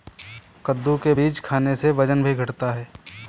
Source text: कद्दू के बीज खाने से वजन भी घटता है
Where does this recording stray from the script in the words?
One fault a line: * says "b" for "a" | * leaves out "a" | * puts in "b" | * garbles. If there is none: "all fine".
all fine